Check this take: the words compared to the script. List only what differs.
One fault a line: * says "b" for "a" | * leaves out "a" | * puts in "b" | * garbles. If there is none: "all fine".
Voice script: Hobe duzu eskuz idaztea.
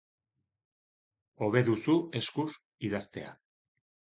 all fine